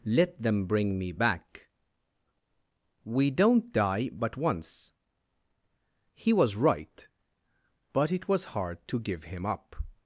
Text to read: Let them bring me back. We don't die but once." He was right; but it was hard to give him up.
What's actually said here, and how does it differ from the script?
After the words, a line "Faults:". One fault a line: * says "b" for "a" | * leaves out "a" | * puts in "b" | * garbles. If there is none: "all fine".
Let them bring me back. We don't die but once." He was right; but it was hard to give him up.
Faults:
all fine